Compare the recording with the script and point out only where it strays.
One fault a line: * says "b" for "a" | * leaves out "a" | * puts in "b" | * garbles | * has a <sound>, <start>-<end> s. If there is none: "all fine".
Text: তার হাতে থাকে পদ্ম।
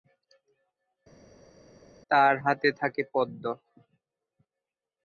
all fine